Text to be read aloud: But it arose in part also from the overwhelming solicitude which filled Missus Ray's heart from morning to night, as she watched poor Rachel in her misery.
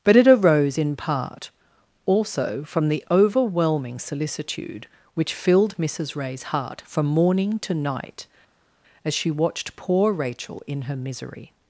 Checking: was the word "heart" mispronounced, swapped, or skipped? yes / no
no